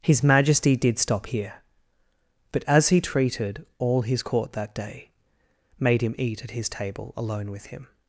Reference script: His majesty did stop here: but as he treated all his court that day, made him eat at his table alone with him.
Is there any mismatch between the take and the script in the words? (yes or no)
no